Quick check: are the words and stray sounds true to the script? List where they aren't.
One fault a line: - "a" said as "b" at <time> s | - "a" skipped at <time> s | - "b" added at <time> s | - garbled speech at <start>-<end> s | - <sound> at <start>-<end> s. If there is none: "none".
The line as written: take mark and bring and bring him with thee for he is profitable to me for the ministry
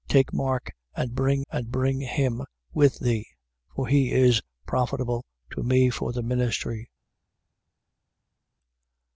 none